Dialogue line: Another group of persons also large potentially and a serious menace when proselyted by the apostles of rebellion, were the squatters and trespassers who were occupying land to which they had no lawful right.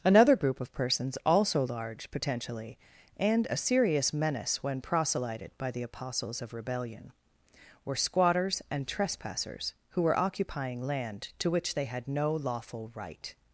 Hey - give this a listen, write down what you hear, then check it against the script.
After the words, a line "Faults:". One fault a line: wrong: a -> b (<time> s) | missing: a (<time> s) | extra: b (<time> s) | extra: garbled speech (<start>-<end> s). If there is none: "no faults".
Another group of persons also large potentially and a serious menace when proselyted by the apostles of rebellion, were squatters and trespassers who were occupying land to which they had no lawful right.
Faults:
missing: the (8.0 s)